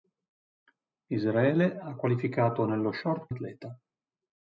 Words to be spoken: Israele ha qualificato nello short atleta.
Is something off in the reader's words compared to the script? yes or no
no